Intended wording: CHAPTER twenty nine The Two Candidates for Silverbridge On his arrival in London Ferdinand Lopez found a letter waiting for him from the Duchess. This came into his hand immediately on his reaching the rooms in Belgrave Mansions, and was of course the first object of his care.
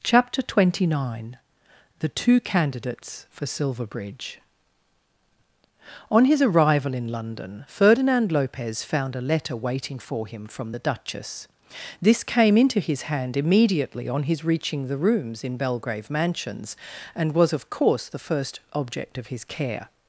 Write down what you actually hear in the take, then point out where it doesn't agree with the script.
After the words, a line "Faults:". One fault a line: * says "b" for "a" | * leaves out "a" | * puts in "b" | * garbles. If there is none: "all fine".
CHAPTER twenty nine The Two Candidates for Silverbridge On his arrival in London Ferdinand Lopez found a letter waiting for him from the Duchess. This came into his hand immediately on his reaching the rooms in Belgrave Mansions, and was of course the first object of his care.
Faults:
all fine